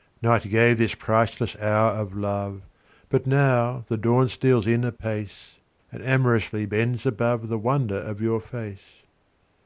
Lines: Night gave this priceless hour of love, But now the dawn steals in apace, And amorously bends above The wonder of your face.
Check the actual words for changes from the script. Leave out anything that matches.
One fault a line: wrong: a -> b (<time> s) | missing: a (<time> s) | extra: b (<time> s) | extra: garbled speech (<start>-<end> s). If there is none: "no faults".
no faults